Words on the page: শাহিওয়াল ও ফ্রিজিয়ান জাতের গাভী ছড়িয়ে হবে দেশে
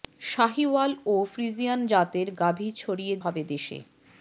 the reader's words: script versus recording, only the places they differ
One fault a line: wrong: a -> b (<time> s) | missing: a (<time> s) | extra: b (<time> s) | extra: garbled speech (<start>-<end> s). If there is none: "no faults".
no faults